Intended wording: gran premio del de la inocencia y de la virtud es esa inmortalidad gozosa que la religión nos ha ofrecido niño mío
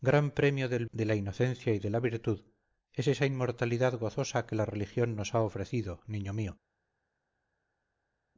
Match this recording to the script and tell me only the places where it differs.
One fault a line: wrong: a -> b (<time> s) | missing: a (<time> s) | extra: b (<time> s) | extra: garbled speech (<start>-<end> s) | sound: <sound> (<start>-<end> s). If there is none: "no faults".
no faults